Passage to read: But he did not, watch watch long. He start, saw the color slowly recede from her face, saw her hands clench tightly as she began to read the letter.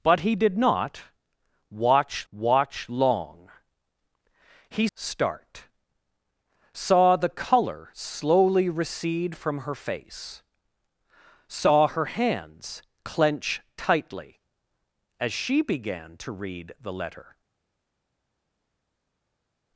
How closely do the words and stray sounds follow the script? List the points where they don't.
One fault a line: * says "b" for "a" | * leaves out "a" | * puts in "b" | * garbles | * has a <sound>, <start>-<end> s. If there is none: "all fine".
all fine